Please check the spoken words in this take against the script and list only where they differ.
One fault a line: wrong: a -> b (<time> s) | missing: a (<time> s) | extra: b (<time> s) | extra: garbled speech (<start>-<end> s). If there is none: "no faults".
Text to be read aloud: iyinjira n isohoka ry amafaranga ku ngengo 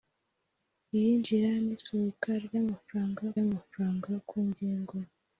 extra: amafaranga (3.4 s)